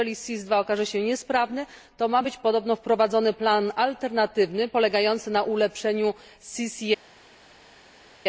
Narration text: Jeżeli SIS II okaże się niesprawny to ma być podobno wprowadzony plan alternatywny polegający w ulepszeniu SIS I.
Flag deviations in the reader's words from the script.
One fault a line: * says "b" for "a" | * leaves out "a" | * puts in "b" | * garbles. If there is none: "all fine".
* says "na" for "w"